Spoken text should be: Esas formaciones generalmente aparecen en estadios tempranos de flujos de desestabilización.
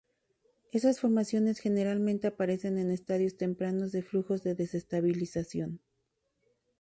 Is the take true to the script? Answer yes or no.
yes